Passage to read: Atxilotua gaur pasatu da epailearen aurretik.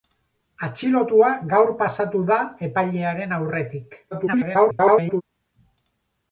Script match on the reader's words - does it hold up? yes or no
no